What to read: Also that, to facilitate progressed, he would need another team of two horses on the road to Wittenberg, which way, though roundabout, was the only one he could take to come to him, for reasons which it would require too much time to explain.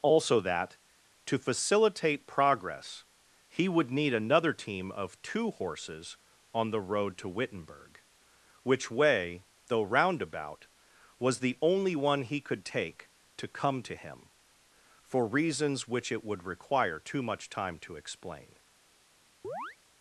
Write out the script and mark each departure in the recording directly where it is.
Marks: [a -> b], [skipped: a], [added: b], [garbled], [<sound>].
Also that, to facilitate [progressed, -> progress] he would need another team of two horses on the road to Wittenberg, which way, though roundabout, was the only one he could take to come to him, for reasons which it would require too much time to explain. [chirp]